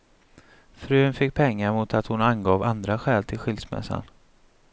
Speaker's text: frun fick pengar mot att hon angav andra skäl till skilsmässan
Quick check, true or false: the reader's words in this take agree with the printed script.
true